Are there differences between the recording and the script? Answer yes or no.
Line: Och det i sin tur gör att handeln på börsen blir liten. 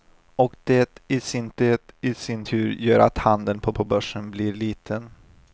yes